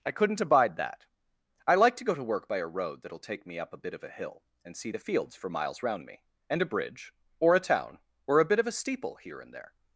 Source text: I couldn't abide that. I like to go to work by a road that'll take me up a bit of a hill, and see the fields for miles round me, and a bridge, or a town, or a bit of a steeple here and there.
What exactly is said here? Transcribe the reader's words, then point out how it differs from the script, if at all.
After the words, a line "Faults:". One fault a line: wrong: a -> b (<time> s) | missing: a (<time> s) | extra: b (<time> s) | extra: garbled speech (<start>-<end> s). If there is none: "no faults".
I couldn't abide that. I like to go to work by a road that'll take me up a bit of a hill, and see the fields for miles round me, and a bridge, or a town, or a bit of a steeple here and there.
Faults:
no faults